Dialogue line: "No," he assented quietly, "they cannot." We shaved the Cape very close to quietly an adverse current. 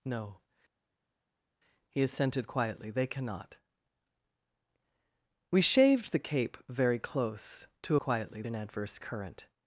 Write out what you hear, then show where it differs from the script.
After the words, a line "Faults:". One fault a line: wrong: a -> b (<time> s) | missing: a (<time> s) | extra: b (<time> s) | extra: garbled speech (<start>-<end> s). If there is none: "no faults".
"No," he assented quietly, "they cannot." We shaved the Cape very close to quietly an adverse current.
Faults:
no faults